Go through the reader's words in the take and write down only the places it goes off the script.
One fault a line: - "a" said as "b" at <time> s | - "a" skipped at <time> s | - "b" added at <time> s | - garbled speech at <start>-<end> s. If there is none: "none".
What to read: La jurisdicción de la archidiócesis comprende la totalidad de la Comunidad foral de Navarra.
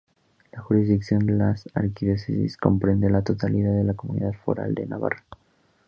- "de" skipped at 1.3 s